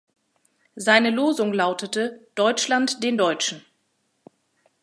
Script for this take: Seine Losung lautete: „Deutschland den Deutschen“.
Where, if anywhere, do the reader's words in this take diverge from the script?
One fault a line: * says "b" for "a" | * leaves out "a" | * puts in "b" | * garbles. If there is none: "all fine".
all fine